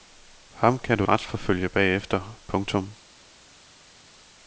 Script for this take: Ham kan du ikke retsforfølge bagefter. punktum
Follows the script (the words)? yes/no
no